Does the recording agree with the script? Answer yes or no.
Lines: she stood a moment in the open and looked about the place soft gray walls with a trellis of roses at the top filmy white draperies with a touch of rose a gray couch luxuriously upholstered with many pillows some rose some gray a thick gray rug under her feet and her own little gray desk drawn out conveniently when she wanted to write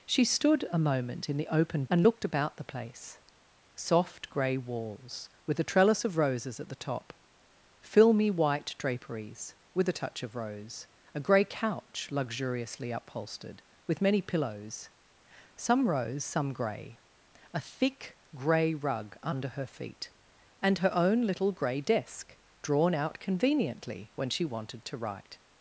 yes